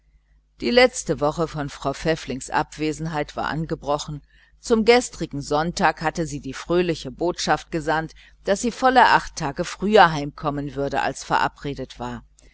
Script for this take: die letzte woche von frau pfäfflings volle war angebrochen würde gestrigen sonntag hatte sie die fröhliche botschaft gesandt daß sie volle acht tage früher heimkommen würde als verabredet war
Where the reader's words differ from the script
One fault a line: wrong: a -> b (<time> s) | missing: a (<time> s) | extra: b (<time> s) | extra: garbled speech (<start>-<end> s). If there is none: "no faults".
wrong: volle -> abwesenheit (2.5 s)
wrong: würde -> zum (4.6 s)